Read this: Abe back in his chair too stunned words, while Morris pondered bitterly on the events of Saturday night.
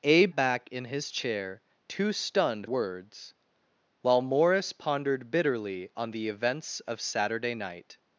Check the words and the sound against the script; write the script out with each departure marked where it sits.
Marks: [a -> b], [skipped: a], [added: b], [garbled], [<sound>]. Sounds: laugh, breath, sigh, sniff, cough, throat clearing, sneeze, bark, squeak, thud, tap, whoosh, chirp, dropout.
Abe back in his chair too stunned words, while Morris pondered bitterly on the events of Saturday night.